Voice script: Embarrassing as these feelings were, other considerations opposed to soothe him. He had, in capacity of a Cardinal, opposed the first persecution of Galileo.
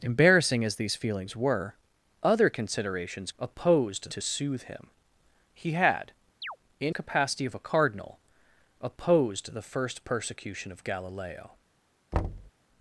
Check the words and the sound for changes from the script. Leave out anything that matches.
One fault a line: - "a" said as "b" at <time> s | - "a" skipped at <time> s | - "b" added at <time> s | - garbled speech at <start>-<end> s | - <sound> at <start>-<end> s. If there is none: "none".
- chirp at 6.4-6.6 s
- thud at 12.1-12.5 s